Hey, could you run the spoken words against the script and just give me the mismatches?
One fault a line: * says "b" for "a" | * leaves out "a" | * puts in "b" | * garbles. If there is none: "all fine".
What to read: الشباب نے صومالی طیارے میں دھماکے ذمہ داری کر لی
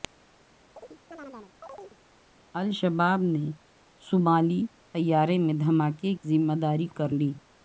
all fine